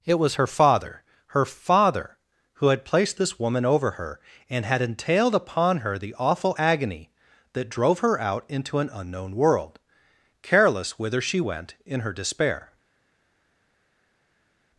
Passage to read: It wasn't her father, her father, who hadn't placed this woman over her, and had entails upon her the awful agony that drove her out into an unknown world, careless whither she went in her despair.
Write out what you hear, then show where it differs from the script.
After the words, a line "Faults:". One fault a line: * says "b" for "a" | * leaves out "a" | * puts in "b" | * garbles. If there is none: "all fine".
It was her father, her father, who had placed this woman over her, and had entailed upon her the awful agony that drove her out into an unknown world, careless whither she went in her despair.
Faults:
* says "was" for "wasn't"
* says "had" for "hadn't"
* says "entailed" for "entails"